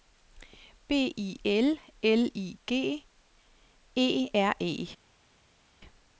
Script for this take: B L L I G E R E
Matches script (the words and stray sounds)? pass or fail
fail